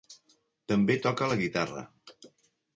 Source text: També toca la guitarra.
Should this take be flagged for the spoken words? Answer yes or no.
no